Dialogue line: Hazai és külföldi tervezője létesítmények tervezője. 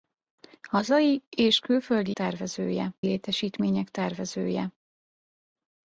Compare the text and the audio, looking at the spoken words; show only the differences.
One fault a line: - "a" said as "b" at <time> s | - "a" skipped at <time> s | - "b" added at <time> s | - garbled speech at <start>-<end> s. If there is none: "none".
none